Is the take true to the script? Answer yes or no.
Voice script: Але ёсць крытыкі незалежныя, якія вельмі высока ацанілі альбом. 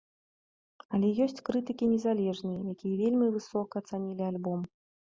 yes